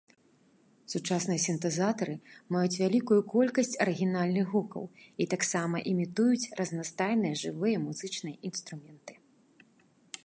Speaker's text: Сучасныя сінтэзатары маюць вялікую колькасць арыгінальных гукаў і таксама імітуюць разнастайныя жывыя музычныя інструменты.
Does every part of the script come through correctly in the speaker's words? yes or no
yes